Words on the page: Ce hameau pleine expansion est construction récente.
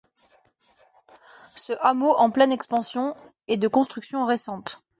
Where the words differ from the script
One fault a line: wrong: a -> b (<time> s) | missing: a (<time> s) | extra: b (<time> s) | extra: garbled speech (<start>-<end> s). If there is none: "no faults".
extra: en (2.1 s)
extra: de (3.6 s)